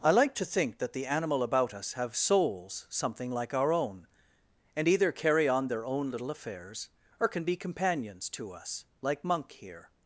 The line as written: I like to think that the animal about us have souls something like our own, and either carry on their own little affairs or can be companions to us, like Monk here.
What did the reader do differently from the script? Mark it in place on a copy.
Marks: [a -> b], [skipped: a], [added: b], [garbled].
I like to think that the animal about us have souls something like our own, and either carry on their own little affairs or can be companions to us, like Monk here.